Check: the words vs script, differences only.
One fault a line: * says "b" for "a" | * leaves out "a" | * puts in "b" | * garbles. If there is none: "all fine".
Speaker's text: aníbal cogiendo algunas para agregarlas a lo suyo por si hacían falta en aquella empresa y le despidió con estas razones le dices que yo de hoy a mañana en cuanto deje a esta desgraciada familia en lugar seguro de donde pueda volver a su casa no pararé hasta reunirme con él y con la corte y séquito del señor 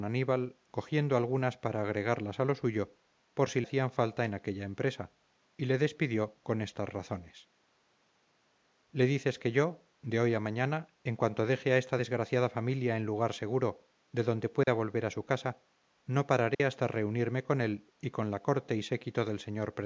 all fine